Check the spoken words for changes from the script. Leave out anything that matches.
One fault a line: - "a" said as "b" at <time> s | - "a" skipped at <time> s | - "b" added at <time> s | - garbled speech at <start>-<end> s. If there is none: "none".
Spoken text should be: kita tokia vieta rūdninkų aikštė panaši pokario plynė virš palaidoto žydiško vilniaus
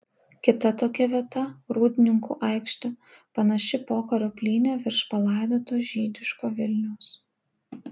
none